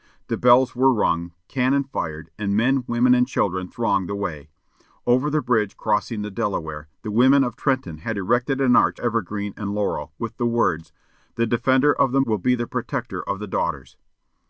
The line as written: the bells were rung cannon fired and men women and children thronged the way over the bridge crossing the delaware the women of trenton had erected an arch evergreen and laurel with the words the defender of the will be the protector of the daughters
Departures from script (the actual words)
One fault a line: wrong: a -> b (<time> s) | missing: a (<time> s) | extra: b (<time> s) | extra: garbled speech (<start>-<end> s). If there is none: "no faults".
no faults